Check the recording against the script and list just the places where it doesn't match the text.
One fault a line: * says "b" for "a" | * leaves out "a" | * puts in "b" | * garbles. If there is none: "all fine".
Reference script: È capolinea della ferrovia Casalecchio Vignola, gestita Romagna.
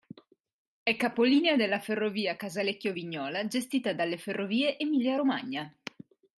* puts in "dalle Ferrovie Emilia"